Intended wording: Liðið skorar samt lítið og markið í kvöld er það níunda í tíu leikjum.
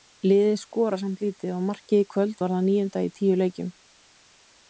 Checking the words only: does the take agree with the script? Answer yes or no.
no